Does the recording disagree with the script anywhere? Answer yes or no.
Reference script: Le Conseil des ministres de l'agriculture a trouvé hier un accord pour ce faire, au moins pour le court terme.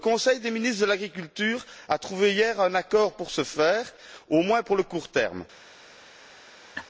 no